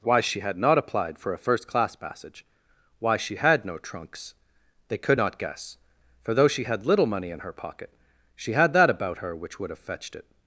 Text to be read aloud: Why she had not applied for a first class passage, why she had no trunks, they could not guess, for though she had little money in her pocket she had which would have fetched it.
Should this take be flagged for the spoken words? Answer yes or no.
yes